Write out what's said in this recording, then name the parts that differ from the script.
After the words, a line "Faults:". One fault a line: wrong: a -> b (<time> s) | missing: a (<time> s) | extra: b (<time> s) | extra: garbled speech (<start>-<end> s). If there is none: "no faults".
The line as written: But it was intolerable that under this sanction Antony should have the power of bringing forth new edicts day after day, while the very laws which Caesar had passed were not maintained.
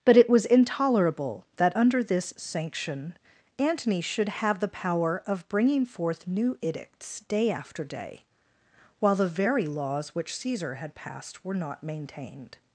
But it was intolerable that under this sanction Antony should have the power of bringing forth new edicts day after day, while the very laws which Caesar had passed were not maintained.
Faults:
no faults